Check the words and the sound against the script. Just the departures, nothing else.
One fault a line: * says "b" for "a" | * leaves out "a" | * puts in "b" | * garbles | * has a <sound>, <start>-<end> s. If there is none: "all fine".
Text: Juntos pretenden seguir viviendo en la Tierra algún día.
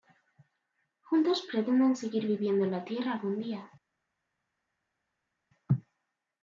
all fine